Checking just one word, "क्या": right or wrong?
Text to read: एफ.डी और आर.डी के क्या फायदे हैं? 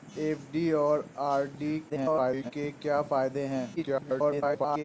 right